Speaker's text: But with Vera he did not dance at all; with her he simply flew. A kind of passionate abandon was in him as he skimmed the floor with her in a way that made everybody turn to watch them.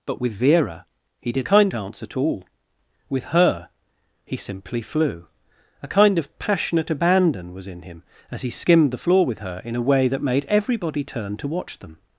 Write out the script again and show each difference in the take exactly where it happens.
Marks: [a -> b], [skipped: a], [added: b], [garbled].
But with Vera he did [not -> kind] dance at all; with her he simply flew. A kind of passionate abandon was in him as he skimmed the floor with her in a way that made everybody turn to watch them.